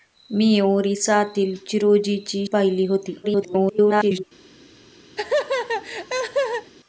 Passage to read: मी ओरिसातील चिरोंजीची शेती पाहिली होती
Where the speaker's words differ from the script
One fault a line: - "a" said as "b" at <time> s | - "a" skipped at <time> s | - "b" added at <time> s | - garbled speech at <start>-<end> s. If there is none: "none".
- "शेती" skipped at 2.5 s
- garbled speech at 3.2-4.2 s